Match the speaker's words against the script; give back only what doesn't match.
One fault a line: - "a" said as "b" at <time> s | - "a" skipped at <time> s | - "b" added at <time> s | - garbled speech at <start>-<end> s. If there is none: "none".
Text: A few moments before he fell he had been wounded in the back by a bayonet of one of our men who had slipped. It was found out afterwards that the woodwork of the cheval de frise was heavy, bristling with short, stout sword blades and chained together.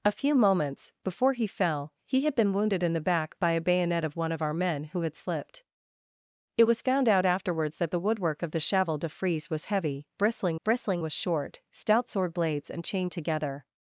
- "bristling" added at 10.6 s